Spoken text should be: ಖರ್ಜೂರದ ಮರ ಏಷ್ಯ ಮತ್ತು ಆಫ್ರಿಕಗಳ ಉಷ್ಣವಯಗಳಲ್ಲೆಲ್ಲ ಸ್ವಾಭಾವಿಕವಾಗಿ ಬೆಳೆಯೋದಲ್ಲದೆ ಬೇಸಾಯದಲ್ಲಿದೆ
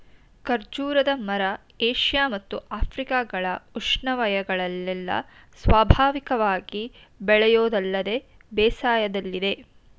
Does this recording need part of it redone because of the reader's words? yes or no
no